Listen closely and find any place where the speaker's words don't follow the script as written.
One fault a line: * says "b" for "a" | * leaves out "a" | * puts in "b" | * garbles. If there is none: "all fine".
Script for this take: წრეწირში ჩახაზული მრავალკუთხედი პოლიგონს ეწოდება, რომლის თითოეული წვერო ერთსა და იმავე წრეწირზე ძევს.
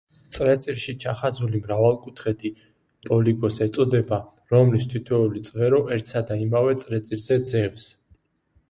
all fine